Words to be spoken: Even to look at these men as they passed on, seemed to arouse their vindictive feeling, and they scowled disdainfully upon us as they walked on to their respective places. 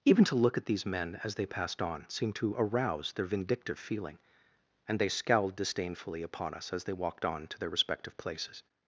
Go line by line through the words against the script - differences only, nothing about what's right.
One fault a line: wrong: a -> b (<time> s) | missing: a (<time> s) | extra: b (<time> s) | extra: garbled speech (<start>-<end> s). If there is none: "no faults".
no faults